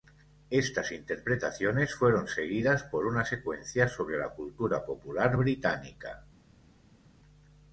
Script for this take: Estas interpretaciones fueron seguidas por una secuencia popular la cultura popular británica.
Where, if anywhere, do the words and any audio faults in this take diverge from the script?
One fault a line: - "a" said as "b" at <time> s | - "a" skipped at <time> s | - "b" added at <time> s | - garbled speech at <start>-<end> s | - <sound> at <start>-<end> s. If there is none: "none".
- "popular" said as "sobre" at 3.9 s